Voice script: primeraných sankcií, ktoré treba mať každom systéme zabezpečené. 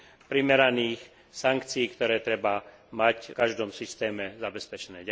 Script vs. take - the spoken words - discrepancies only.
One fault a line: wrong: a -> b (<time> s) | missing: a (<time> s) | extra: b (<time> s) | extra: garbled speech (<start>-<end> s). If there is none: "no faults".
no faults